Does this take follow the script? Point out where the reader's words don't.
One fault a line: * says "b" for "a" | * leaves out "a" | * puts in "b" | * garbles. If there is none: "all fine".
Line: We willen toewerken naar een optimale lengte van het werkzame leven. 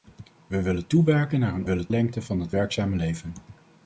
* says "willen" for "optimale"